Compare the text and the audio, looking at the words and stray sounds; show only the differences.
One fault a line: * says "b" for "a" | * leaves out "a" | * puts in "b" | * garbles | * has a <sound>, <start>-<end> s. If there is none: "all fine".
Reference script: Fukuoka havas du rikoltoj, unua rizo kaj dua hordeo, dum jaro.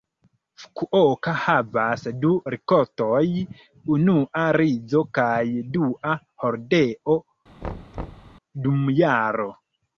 * has a thud, 7.6-8.4 s